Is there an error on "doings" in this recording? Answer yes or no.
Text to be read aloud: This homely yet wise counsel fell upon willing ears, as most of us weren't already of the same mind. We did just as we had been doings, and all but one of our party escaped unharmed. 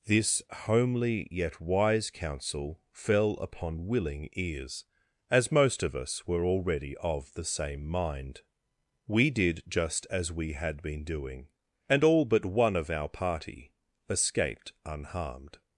yes